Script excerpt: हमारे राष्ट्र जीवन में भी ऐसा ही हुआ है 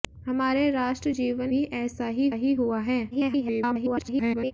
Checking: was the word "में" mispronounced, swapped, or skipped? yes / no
yes